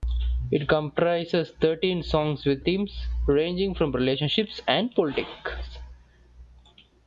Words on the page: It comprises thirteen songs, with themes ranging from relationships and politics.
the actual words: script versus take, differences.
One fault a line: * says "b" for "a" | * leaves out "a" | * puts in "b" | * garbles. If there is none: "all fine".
all fine